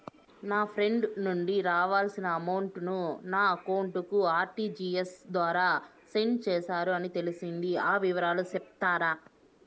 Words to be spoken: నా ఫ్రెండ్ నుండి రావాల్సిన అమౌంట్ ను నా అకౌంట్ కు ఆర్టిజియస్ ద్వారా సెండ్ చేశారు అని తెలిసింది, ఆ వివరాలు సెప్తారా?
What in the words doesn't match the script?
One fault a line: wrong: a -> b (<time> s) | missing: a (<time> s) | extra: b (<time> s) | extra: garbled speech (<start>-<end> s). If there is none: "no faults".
no faults